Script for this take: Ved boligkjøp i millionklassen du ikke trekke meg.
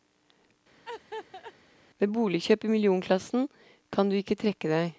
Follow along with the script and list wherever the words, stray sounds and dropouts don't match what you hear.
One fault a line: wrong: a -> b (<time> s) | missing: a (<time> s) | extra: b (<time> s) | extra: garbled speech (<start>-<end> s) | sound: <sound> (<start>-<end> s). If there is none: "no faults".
sound: laugh (0.8-1.5 s)
extra: kan (3.9 s)
wrong: meg -> deg (4.7 s)